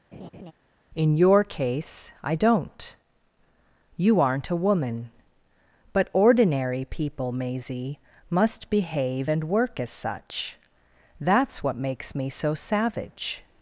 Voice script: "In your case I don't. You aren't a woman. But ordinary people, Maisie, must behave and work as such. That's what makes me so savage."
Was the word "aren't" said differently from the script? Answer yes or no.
no